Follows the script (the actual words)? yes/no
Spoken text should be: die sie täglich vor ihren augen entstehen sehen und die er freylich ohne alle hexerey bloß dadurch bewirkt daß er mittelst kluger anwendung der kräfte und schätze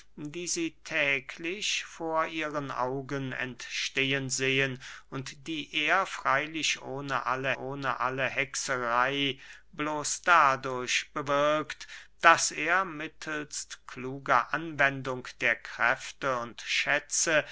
no